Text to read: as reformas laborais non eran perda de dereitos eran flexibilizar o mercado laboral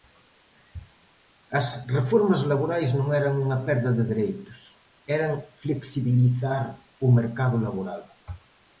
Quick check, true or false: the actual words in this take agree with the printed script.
false